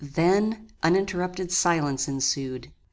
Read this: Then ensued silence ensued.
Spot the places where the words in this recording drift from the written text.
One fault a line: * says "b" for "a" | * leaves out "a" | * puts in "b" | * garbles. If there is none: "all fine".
* says "uninterrupted" for "ensued"